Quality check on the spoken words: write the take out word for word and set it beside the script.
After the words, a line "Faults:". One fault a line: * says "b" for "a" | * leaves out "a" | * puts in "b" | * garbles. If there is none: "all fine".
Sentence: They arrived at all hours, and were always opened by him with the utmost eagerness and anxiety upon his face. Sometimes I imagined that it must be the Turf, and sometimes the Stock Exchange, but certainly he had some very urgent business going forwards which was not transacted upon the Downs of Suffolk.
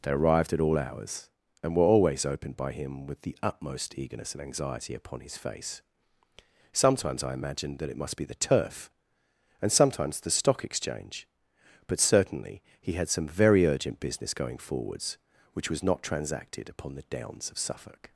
They arrived at all hours, and were always opened by him with the utmost eagerness and anxiety upon his face. Sometimes I imagined that it must be the Turf, and sometimes the Stock Exchange, but certainly he had some very urgent business going forwards which was not transacted upon the Downs of Suffolk.
Faults:
all fine